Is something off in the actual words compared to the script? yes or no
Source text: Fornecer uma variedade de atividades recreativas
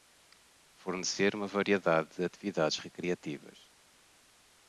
no